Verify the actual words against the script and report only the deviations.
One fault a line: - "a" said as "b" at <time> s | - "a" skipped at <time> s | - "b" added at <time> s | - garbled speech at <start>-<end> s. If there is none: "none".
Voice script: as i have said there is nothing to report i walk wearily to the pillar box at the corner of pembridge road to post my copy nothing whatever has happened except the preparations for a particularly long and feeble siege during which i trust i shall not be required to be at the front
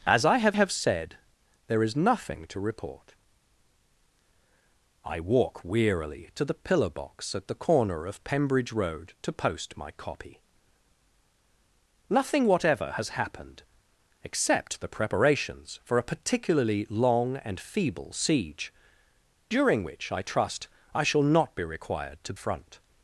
- "have" added at 0.5 s
- "be at the" skipped at 22.3 s